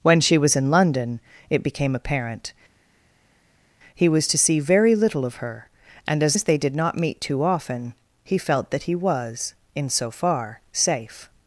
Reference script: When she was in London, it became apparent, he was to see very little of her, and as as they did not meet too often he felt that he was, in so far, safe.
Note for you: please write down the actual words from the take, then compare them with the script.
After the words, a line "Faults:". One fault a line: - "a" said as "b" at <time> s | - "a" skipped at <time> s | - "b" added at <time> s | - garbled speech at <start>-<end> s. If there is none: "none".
When she was in London, it became apparent, he was to see very little of her, and as as they did not meet too often he felt that he was, in so far, safe.
Faults:
none